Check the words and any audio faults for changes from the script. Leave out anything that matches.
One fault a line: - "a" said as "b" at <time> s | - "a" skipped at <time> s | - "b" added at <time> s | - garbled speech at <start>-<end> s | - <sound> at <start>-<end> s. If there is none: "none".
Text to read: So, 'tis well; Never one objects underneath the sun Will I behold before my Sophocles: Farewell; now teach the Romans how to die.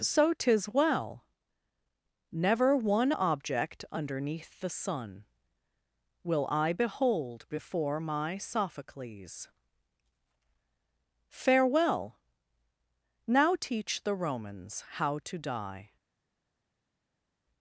- "objects" said as "object" at 3.1 s